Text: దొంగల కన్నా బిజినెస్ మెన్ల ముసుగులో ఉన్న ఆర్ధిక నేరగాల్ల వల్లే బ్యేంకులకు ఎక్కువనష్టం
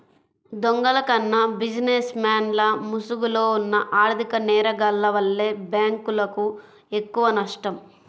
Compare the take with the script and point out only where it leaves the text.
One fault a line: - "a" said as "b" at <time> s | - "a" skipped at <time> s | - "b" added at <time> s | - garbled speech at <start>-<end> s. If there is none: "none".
none